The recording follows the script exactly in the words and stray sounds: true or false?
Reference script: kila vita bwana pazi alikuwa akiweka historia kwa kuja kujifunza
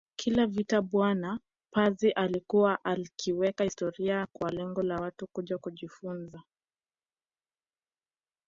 false